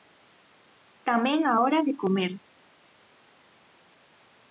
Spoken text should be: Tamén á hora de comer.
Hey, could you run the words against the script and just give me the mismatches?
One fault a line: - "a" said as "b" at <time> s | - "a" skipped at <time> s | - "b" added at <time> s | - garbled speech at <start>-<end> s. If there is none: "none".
none